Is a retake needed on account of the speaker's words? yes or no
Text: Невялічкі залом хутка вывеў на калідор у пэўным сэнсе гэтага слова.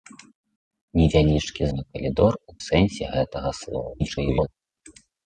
yes